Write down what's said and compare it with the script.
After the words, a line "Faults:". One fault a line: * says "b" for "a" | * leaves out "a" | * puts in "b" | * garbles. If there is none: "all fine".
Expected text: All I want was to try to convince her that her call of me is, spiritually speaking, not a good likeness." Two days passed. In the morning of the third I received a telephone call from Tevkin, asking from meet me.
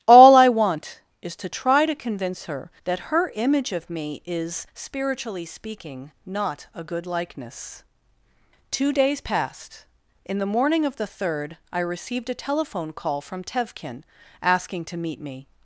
All I want is to try to convince her that her image of me is, spiritually speaking, not a good likeness." Two days passed. In the morning of the third I received a telephone call from Tevkin, asking to meet me.
Faults:
* says "is" for "was"
* says "image" for "call"
* says "to" for "from"